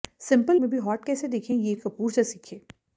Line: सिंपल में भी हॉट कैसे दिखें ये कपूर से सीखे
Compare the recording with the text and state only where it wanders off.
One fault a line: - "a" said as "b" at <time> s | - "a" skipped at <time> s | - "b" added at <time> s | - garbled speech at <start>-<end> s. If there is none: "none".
none